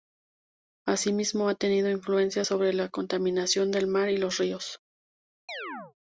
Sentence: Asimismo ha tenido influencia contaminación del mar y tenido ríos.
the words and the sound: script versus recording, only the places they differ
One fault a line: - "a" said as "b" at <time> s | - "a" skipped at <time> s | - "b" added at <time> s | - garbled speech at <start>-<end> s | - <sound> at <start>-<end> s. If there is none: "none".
- "sobre la" added at 2.4 s
- "tenido" said as "los" at 4.2 s
- chirp at 5.5-5.9 s